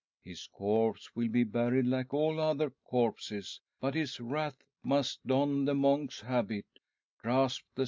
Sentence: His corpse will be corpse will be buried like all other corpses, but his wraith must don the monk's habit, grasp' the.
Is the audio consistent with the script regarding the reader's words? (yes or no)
no